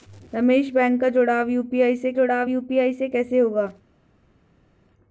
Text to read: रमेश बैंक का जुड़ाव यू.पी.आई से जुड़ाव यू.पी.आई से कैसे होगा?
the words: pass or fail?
pass